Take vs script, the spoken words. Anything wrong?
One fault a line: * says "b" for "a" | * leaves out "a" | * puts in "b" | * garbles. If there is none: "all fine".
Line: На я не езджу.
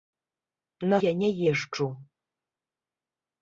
all fine